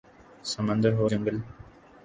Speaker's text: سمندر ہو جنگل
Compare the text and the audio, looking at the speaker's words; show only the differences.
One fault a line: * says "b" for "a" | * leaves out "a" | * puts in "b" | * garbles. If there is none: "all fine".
all fine